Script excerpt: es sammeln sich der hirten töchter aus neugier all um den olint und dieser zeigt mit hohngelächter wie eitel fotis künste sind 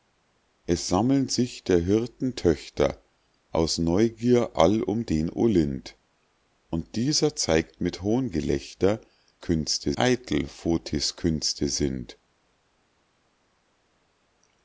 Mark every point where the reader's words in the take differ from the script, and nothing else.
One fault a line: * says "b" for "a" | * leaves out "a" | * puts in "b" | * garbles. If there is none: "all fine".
* says "künste" for "wie"